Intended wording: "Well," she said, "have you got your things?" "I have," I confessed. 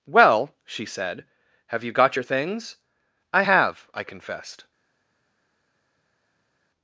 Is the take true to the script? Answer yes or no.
yes